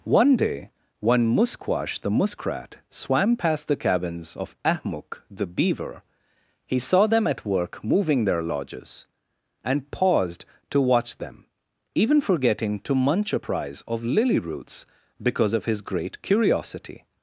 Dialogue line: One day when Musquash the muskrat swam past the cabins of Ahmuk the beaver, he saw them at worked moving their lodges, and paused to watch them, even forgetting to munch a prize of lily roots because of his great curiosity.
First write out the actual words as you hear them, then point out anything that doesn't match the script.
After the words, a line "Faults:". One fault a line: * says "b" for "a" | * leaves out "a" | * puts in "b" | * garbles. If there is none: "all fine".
One day when Musquash the muskrat swam past the cabins of Ahmuk the beaver, he saw them at work moving their lodges, and paused to watch them, even forgetting to munch a prize of lily roots because of his great curiosity.
Faults:
* says "work" for "worked"